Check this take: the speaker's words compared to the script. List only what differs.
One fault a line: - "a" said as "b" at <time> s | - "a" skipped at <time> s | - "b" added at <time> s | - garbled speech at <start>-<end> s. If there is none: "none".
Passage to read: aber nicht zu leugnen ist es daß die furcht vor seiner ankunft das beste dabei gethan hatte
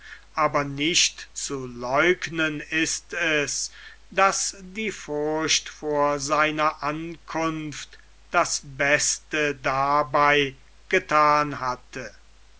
none